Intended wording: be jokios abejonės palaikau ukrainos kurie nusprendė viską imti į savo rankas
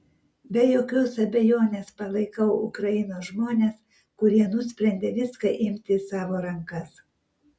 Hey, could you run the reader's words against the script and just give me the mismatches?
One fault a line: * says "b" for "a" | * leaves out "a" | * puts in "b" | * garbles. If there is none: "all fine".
* puts in "žmones"